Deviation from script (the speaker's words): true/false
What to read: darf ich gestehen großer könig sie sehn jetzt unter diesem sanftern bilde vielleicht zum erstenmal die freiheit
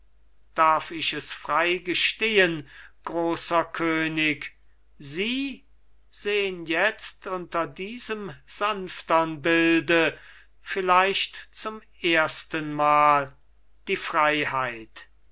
true